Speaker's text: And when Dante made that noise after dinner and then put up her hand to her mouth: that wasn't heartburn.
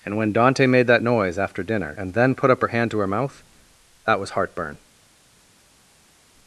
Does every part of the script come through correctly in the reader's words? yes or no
no